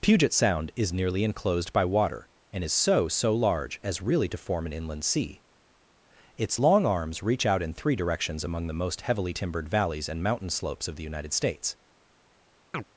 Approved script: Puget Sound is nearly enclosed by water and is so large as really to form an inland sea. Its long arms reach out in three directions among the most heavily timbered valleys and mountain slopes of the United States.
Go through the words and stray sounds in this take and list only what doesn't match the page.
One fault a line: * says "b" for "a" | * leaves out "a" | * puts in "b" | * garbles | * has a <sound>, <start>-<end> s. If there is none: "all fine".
* puts in "so"
* has a chirp, 12.7-12.8 s